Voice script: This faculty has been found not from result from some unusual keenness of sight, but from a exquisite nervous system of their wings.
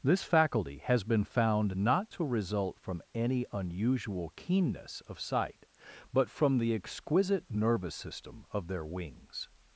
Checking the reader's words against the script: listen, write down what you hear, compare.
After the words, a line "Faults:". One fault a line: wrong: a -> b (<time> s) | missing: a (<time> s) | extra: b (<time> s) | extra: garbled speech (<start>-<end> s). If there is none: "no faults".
This faculty has been found not to result from any unusual keenness of sight, but from the exquisite nervous system of their wings.
Faults:
wrong: from -> to (2.1 s)
wrong: some -> any (3.1 s)
wrong: a -> the (6.6 s)